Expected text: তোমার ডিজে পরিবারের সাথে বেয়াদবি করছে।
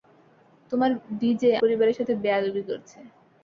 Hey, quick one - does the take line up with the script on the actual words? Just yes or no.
yes